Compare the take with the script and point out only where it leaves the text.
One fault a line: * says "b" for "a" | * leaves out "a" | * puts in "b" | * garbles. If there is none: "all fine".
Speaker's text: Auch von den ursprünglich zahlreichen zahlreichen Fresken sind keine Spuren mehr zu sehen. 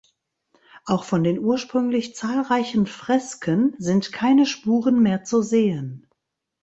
* leaves out "zahlreichen"